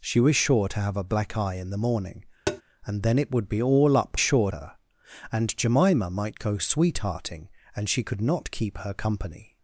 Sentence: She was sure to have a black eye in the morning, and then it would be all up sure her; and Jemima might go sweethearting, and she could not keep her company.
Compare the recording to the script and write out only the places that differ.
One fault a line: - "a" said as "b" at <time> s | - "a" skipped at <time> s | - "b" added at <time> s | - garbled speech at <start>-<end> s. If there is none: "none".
none